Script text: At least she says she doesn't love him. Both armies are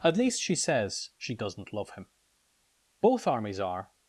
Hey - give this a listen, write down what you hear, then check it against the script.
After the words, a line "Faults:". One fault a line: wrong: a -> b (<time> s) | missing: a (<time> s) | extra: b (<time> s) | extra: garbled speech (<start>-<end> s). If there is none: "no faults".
At least she says she doesn't love him. Both armies are
Faults:
no faults